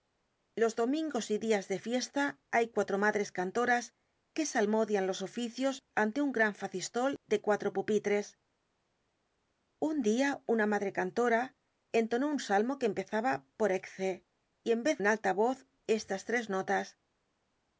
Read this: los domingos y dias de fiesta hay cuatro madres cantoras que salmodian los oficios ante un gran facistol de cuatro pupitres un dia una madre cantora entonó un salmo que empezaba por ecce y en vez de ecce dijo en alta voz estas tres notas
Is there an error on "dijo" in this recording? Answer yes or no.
yes